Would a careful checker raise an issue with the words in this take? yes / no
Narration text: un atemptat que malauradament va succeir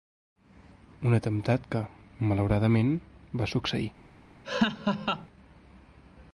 no